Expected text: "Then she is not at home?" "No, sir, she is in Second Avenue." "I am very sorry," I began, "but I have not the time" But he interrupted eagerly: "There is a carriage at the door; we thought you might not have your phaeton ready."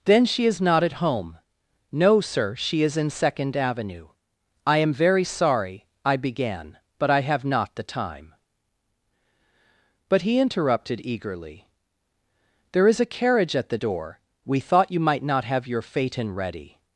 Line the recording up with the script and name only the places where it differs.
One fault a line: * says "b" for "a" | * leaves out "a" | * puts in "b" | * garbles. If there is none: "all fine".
all fine